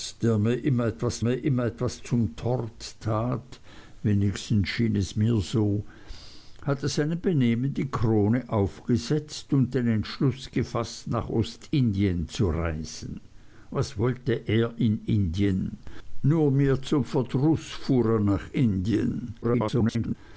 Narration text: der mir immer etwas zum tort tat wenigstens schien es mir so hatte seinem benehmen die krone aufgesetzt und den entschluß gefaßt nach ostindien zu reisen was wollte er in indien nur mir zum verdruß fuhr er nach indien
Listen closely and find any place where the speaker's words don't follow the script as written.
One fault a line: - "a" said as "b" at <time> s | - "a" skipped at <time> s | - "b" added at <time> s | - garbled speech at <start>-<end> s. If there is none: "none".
- "mir immer etwas" added at 1.2 s
- garbled speech at 19.4-20.1 s